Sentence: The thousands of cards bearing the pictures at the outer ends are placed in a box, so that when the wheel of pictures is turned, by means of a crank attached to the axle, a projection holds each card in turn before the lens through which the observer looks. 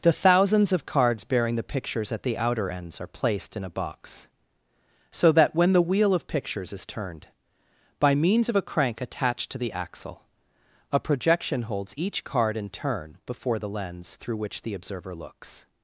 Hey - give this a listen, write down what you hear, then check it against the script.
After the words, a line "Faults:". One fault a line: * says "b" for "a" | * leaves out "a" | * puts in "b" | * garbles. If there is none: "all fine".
The thousands of cards bearing the pictures at the outer ends are placed in a box, so that when the wheel of pictures is turned, by means of a crank attached to the axle, a projection holds each card in turn before the lens through which the observer looks.
Faults:
all fine